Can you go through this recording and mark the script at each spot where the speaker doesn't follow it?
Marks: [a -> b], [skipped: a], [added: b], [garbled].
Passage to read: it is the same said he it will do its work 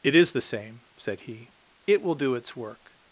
it is the same said he it will do its work